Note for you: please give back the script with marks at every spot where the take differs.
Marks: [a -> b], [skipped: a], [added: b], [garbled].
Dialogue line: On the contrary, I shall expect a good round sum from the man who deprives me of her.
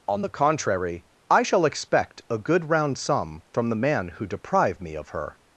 On the contrary, I shall expect a good round sum from the man who [deprives -> deprive] me of her.